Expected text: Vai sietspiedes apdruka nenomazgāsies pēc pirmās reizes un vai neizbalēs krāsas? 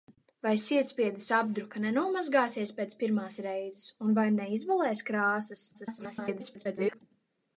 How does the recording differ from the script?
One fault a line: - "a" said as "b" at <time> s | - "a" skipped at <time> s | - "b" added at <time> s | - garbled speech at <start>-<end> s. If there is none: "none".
- garbled speech at 5.7-7.0 s